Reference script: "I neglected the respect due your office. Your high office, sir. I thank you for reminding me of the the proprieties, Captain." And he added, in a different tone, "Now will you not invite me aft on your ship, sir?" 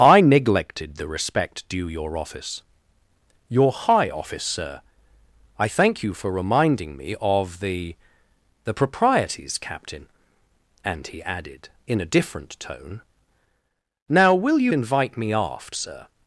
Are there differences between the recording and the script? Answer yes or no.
yes